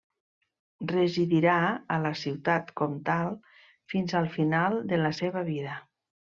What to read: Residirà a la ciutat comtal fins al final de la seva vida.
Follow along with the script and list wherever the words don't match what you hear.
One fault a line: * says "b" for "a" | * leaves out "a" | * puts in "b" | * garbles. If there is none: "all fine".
all fine